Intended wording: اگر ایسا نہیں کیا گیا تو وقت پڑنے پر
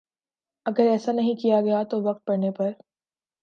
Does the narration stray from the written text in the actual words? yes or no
no